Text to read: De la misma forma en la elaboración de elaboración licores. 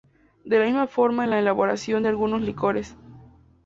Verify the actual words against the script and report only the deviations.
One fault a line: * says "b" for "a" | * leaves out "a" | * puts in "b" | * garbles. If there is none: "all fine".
* says "algunos" for "elaboración"